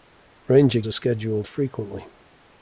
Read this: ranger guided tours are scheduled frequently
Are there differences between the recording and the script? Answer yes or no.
yes